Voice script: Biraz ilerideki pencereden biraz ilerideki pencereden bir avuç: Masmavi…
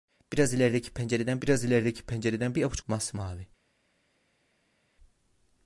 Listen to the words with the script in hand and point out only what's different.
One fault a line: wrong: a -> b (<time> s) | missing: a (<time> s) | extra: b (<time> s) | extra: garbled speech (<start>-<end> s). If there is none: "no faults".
no faults